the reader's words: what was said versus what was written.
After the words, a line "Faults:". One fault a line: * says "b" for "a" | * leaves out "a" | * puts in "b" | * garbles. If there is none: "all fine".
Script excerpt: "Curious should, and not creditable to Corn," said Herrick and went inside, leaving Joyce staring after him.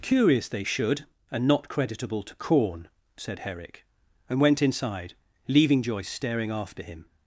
"Curious they should, and not creditable to Corn," said Herrick and went inside, leaving Joyce staring after him.
Faults:
* puts in "they"